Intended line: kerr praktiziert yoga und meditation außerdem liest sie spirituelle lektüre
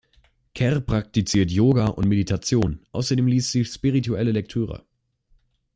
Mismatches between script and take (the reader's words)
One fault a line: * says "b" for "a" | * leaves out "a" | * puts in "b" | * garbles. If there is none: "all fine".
all fine